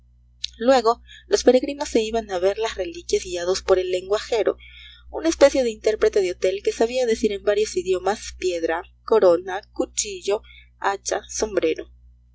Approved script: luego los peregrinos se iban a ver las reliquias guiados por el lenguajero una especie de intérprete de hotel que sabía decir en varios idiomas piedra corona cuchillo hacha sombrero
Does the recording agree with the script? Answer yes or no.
yes